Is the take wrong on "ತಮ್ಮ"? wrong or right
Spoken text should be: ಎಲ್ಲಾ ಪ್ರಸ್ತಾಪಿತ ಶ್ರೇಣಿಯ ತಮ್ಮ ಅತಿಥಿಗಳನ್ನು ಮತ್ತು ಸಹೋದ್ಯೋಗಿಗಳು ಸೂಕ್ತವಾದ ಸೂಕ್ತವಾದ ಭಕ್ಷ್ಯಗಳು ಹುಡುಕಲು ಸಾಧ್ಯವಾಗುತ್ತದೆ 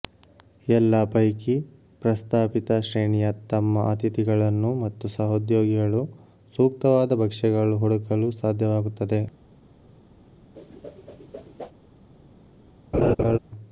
right